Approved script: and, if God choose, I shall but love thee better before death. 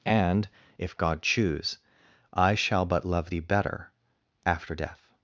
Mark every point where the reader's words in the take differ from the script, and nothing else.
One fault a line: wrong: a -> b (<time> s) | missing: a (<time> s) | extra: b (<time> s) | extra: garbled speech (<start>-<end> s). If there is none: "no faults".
wrong: before -> after (4.4 s)